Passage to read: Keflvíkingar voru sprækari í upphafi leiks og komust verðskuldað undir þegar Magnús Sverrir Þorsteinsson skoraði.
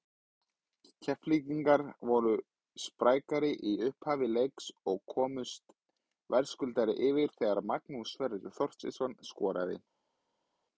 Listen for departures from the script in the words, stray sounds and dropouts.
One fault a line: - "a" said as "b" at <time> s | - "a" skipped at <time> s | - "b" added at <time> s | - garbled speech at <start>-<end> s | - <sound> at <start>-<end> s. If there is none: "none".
- "undir" said as "yfir" at 7.1 s